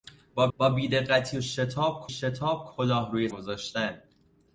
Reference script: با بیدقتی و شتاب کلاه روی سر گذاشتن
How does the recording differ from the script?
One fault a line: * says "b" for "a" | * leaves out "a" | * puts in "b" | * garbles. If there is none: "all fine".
* puts in "با"
* puts in "شتاب"
* leaves out "سر"